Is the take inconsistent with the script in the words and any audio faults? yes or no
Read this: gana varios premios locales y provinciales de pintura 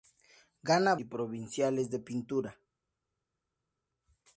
yes